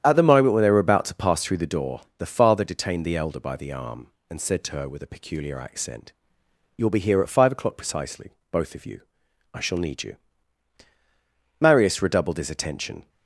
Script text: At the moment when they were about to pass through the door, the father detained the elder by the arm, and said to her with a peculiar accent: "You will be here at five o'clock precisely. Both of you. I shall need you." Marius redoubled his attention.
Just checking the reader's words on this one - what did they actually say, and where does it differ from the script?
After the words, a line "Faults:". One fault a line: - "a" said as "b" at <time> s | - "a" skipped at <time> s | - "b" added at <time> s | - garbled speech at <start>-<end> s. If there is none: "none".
At the moment when they were about to pass through the door, the father detained the elder by the arm, and said to her with a peculiar accent: "You will be here at five o'clock precisely. Both of you. I shall need you." Marius redoubled his attention.
Faults:
none